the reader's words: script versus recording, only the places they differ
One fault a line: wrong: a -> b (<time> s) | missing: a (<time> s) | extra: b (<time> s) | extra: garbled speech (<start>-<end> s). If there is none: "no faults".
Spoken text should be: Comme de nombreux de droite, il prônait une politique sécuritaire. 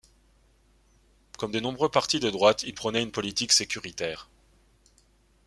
extra: partis (1.9 s)